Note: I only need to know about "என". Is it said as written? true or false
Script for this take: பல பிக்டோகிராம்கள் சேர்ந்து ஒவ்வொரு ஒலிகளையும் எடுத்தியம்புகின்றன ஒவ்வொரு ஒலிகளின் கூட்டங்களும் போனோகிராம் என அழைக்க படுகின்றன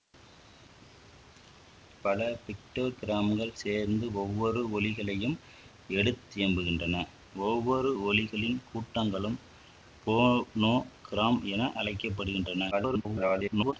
true